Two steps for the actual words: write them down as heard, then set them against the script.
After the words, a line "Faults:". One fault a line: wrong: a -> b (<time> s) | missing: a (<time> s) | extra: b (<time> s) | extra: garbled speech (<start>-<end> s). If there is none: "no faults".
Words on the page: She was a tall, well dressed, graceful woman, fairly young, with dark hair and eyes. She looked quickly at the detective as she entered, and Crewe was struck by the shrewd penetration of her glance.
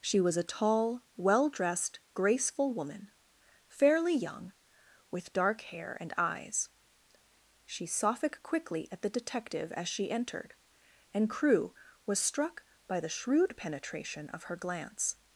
She was a tall, well dressed, graceful woman, fairly young, with dark hair and eyes. She sophic quickly at the detective as she entered, and Crewe was struck by the shrewd penetration of her glance.
Faults:
wrong: looked -> sophic (7.8 s)